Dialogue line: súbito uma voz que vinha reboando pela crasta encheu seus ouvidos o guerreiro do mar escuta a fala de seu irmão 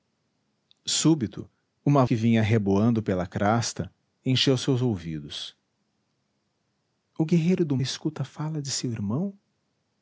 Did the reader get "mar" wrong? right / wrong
wrong